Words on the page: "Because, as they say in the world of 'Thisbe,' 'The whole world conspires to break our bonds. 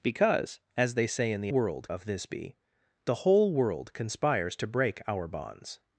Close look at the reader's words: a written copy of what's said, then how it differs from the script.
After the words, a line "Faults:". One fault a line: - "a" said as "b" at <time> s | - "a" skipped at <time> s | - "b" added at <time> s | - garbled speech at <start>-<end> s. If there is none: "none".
"Because, as they say in the world of 'Thisbe,' 'The whole world conspires to break our bonds.
Faults:
none